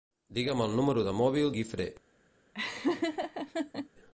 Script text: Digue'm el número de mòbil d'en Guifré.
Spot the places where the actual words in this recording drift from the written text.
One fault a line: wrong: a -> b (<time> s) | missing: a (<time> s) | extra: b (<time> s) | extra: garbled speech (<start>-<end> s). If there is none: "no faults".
missing: d'en (1.5 s)